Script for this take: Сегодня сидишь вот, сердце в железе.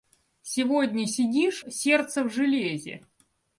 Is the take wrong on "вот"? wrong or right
wrong